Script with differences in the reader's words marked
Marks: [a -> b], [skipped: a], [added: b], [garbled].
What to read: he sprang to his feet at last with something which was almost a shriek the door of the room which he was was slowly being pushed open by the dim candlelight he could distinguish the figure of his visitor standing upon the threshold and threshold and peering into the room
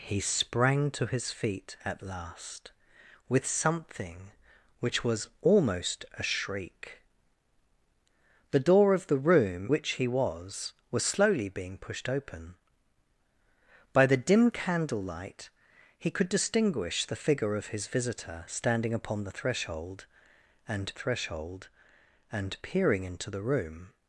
he sprang to his feet at last with something which was almost a shriek the door of the room which he was was slowly being pushed open by the dim candlelight he could distinguish the figure of his visitor standing upon the threshold and threshold and peering into the room